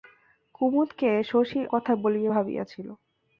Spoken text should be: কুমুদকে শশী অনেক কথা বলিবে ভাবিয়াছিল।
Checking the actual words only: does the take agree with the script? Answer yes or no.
no